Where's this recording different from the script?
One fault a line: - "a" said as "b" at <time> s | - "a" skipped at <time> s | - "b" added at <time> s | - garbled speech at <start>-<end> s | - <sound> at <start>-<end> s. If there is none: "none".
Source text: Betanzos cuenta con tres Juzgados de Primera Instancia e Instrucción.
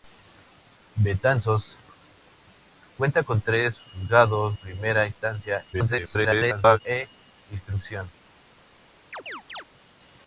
- "de" skipped at 4.6 s
- garbled speech at 5.7-6.8 s
- chirp at 9.1-9.7 s